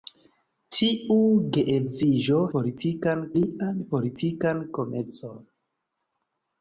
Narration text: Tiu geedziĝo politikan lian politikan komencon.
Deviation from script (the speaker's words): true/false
false